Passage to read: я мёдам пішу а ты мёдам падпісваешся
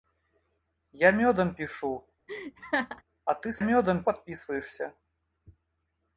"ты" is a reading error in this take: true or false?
false